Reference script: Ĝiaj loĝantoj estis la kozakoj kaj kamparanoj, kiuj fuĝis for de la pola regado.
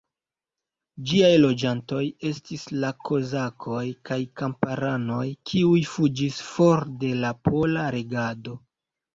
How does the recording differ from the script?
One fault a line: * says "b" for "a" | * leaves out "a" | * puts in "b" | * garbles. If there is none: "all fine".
all fine